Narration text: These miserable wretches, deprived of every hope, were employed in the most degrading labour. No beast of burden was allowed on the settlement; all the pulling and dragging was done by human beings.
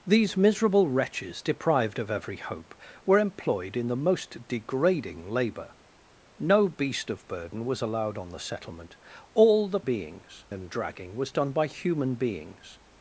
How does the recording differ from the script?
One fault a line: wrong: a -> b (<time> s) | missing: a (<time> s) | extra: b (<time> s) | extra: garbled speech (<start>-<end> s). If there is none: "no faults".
wrong: pulling -> beings (9.8 s)